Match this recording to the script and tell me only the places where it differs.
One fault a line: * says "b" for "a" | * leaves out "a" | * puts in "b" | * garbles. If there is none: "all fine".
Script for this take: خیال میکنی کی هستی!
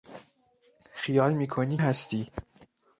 * leaves out "کی"